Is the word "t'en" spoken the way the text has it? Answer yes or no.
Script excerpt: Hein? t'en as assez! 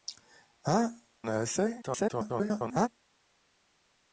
no